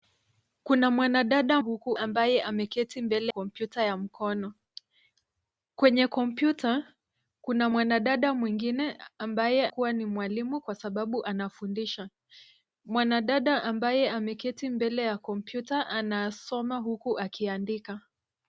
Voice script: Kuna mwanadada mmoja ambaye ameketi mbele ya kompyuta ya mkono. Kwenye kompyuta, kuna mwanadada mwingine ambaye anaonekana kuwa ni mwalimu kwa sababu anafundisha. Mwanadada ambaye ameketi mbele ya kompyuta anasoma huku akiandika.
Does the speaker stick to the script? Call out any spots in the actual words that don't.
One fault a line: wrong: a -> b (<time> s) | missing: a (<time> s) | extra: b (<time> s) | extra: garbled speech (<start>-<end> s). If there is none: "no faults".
wrong: mmoja -> huku (1.6 s)
missing: ya (3.3 s)
missing: anaonekana (9.7 s)